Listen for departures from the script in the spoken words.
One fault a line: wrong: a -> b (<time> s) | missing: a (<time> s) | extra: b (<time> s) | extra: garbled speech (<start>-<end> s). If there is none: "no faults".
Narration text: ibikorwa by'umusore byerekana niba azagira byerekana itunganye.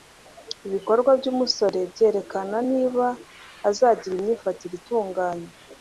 wrong: byerekana -> imyifatire (4.2 s)